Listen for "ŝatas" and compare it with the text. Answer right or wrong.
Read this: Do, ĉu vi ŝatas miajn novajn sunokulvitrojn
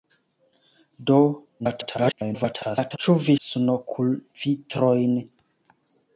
wrong